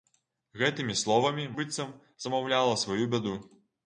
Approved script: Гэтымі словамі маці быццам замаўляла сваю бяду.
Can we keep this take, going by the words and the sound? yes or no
no